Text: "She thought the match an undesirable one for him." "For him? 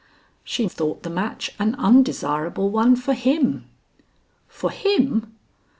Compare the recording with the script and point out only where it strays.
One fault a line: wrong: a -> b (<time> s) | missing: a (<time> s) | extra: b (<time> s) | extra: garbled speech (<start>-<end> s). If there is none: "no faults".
no faults